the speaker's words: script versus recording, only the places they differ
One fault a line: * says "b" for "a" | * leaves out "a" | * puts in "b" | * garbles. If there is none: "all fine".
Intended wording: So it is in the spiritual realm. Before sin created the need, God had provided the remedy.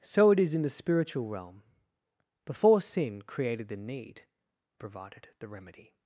* leaves out "God had"